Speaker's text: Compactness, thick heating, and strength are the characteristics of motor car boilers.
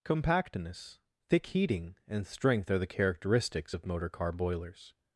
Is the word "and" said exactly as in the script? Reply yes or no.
yes